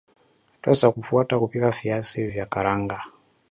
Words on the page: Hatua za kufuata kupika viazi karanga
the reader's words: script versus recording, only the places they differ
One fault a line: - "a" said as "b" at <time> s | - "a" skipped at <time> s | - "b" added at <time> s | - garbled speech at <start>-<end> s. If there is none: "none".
- "vya" added at 2.3 s